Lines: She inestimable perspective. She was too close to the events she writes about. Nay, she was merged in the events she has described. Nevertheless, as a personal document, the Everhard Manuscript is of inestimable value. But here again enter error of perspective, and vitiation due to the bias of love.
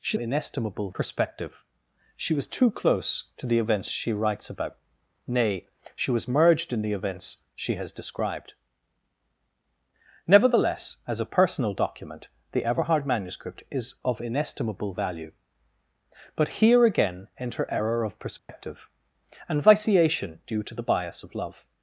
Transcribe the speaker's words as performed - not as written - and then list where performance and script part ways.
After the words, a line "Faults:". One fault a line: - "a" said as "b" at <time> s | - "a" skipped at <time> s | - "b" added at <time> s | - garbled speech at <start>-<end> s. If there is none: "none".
She inestimable perspective. She was too close to the events she writes about. Nay, she was merged in the events she has described. Nevertheless, as a personal document, the Everhard Manuscript is of inestimable value. But here again enter error of perspective, and vitiation due to the bias of love.
Faults:
none